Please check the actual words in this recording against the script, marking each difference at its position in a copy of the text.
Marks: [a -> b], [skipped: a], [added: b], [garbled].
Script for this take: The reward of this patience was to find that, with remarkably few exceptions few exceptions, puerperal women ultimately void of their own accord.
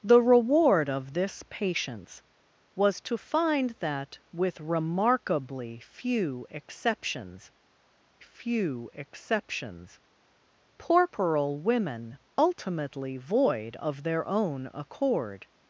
The reward of this patience was to find that, with remarkably few exceptions few exceptions, puerperal women ultimately void of their own accord.